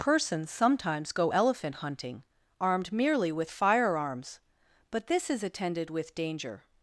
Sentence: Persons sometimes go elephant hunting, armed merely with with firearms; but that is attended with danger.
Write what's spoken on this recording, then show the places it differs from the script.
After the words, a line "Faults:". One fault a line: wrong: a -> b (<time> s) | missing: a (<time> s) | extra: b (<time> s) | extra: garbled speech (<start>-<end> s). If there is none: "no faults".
Persons sometimes go elephant hunting, armed merely with firearms; but this is attended with danger.
Faults:
missing: with (3.5 s)
wrong: that -> this (5.1 s)